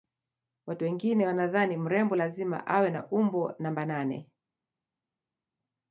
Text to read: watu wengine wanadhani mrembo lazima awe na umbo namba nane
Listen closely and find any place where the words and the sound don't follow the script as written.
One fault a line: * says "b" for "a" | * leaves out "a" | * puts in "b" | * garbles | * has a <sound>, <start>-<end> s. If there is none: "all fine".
all fine